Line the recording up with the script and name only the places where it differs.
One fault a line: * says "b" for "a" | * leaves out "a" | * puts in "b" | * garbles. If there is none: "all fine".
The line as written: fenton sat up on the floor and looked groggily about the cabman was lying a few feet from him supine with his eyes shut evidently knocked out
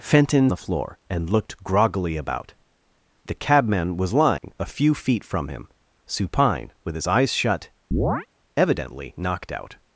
* leaves out "sat up on"